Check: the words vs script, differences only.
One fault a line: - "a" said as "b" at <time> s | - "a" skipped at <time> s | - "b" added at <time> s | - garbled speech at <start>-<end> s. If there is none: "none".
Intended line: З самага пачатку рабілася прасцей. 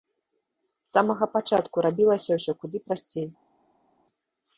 - "ўсё куды" added at 2.4 s